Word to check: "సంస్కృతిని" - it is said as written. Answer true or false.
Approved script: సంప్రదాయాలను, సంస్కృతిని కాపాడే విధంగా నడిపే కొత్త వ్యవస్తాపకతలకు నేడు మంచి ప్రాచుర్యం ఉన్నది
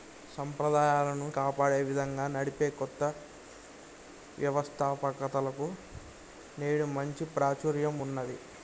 false